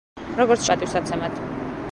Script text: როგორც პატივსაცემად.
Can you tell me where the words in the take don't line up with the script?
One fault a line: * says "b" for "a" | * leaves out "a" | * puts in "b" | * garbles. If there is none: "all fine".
all fine